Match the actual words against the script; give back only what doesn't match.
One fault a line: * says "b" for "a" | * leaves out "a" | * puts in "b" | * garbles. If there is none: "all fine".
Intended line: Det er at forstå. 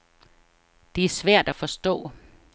* puts in "svært"